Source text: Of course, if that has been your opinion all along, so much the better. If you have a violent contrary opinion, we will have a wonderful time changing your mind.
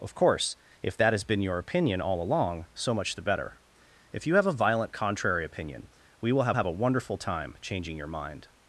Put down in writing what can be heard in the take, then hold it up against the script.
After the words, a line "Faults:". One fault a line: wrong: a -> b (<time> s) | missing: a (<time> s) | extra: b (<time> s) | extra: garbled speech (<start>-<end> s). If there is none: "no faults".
Of course, if that has been your opinion all along, so much the better. If you have a violent contrary opinion, we will have have a wonderful time changing your mind.
Faults:
extra: have (6.5 s)